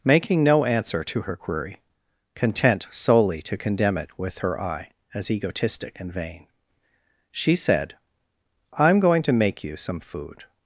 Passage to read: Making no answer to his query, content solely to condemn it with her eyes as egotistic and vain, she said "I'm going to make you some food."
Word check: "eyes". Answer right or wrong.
wrong